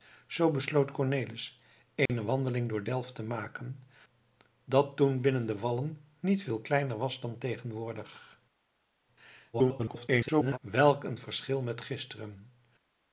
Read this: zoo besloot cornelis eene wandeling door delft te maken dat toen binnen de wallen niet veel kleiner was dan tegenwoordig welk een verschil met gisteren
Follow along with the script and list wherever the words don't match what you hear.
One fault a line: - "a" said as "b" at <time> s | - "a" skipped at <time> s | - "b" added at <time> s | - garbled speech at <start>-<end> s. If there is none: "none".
- garbled speech at 9.5-10.6 s